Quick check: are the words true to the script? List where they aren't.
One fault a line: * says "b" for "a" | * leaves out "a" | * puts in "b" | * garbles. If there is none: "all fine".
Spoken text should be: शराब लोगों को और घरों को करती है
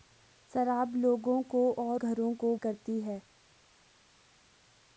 all fine